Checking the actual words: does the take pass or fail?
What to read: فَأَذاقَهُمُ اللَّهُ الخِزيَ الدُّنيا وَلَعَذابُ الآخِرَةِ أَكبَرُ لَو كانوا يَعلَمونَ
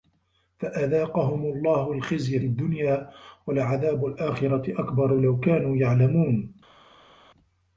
pass